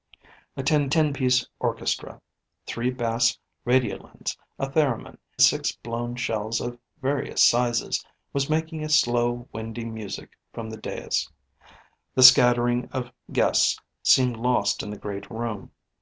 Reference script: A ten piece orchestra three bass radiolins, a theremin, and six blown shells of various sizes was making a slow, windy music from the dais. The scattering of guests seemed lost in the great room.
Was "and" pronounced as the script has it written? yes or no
no